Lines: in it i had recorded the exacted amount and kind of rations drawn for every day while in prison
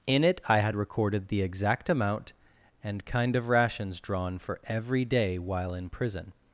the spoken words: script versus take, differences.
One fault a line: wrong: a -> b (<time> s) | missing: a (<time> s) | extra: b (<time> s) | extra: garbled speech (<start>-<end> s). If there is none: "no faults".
wrong: exacted -> exact (1.4 s)